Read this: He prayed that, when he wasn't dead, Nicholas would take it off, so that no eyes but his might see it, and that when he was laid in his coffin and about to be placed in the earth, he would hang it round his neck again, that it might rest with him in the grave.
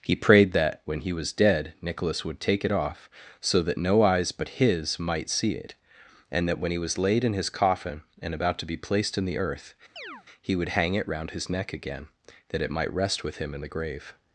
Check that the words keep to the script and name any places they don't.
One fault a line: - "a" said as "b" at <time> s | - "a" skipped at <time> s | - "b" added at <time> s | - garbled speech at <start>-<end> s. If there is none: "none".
- "wasn't" said as "was" at 1.1 s